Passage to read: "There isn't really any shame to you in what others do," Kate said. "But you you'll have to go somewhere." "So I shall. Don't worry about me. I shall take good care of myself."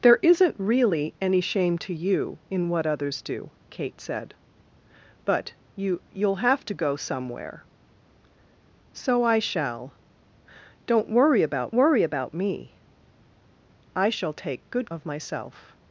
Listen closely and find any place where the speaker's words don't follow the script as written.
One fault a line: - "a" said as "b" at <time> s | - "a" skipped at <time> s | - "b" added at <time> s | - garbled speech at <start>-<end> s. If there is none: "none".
- "worry about" added at 11.7 s
- "care" skipped at 14.9 s